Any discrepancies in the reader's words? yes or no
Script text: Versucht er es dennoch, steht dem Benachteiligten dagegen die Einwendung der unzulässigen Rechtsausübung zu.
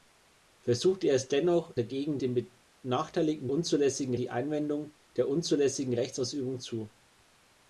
yes